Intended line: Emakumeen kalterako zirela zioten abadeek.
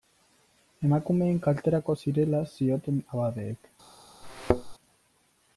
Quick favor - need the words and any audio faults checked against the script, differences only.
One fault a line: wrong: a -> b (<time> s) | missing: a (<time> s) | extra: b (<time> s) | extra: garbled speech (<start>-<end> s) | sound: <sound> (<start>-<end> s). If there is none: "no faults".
sound: thud (4.2-4.7 s)